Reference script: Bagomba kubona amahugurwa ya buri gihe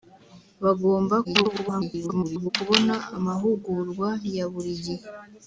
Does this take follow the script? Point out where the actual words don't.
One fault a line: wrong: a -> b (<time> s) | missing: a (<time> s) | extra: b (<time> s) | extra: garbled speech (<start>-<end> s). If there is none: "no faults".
extra: garbled speech (1.2-2.5 s)